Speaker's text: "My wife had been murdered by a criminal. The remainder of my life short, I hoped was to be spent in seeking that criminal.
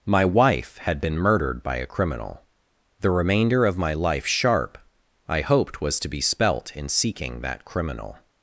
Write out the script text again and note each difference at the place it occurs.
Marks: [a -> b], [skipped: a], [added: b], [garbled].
"My wife had been murdered by a criminal. The remainder of my life [short, -> sharp] I hoped was to be [spent -> spelt] in seeking that criminal.